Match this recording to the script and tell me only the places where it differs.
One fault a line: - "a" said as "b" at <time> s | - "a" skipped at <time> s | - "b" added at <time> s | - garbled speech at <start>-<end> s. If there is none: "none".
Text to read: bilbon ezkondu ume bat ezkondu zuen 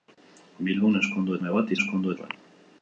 none